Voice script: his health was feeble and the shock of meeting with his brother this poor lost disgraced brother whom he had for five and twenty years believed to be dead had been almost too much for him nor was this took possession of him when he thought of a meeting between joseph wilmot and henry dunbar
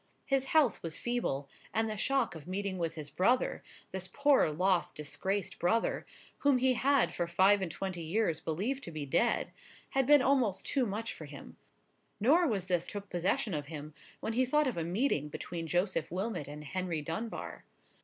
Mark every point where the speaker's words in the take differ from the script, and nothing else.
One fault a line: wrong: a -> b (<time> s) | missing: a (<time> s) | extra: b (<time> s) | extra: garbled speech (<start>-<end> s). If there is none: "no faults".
no faults